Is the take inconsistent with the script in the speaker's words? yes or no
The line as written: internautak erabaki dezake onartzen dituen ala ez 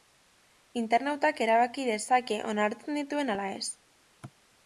no